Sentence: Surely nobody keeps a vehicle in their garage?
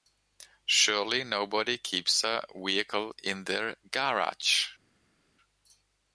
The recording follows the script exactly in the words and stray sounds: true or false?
true